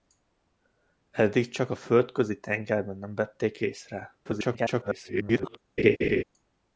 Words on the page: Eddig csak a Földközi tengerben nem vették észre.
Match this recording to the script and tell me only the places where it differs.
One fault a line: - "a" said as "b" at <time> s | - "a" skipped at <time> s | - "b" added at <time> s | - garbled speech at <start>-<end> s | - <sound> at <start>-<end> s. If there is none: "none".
- garbled speech at 4.2-5.6 s
- laugh at 5.8-6.2 s